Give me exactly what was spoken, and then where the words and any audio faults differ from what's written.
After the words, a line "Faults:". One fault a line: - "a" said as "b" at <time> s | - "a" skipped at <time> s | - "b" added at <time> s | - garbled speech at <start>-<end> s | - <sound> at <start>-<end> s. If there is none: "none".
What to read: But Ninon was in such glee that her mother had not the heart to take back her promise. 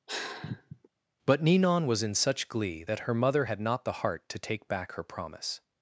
But Ninon was in such glee that her mother had not the heart to take back her promise.
Faults:
- sigh at 0.1-0.9 s